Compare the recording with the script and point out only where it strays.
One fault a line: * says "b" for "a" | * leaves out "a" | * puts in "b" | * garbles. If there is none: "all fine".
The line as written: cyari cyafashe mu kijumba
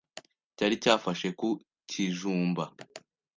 * says "ku" for "mu"